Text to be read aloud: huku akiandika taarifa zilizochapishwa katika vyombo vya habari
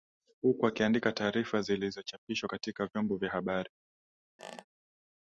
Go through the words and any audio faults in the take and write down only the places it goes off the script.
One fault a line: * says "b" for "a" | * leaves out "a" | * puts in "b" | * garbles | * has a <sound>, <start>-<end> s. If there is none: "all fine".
* has a squeak, 4.4-4.6 s